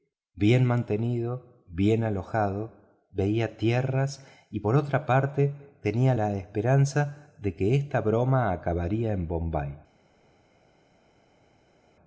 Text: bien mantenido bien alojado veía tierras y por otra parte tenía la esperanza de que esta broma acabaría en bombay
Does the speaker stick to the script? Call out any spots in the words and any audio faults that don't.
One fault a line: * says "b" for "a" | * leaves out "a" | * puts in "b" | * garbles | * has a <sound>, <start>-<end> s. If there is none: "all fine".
all fine